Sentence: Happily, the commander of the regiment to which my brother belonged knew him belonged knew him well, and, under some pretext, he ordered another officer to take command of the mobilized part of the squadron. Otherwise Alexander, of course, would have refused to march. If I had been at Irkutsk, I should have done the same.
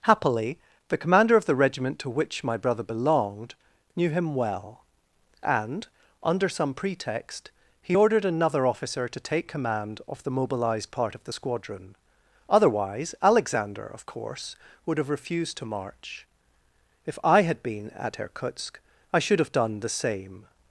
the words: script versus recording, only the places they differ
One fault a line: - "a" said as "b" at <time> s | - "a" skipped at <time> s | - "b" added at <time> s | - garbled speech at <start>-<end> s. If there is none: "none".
- "belonged knew him" skipped at 4.3 s